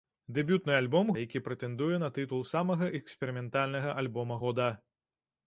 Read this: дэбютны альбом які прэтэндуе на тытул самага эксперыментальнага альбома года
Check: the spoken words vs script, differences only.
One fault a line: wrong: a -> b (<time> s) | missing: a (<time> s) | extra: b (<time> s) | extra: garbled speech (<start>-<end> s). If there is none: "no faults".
no faults